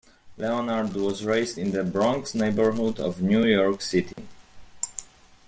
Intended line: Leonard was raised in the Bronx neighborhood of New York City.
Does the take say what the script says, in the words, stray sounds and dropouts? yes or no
no